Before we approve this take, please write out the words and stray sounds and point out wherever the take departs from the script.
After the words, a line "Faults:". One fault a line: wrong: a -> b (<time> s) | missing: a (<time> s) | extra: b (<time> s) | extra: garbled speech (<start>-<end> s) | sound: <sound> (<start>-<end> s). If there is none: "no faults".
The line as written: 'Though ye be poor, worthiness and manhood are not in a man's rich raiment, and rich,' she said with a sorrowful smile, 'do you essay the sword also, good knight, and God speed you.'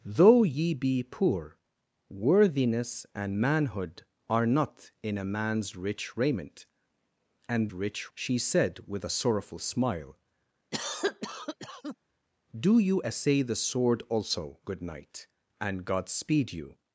'Though ye be poor, worthiness and manhood are not in a man's rich raiment, and rich,' she said with a sorrowful smile, 'do you essay the sword also, good knight, and God speed you.'
Faults:
sound: cough (10.7-12.0 s)